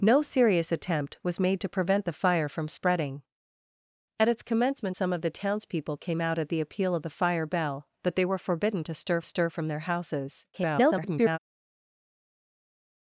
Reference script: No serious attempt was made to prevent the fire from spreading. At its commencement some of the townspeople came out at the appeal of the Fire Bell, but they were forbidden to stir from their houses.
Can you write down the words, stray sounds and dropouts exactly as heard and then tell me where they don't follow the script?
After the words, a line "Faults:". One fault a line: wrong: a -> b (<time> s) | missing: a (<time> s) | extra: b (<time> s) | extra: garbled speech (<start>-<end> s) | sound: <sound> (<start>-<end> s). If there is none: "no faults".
No serious attempt was made to prevent the fire from spreading. At its commencement some of the townspeople came out at the appeal of the Fire Bell, but they were forbidden to stir stir from their houses. [garbled]
Faults:
extra: stir (9.2 s)
extra: garbled speech (10.5-11.4 s)